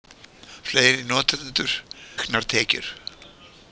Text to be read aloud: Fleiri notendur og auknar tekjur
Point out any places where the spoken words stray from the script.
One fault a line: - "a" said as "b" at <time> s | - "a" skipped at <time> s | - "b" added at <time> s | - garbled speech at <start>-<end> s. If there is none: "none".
- "og" skipped at 1.8 s